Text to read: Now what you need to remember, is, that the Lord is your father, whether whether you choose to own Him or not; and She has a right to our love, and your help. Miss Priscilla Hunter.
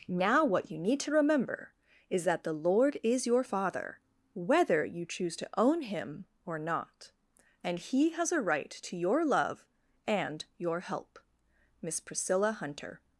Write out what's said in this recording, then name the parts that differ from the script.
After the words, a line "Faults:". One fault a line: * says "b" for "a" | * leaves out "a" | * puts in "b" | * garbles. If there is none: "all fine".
Now what you need to remember, is, that the Lord is your father, whether you choose to own Him or not; and He has a right to your love, and your help. Miss Priscilla Hunter.
Faults:
* leaves out "whether"
* says "He" for "She"
* says "your" for "our"